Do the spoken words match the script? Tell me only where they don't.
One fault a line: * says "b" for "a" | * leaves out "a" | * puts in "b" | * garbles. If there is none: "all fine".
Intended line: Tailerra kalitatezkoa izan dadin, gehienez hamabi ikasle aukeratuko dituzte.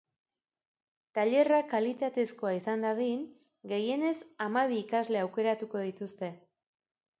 all fine